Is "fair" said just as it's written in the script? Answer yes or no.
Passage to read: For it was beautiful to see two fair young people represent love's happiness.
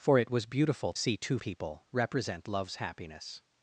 no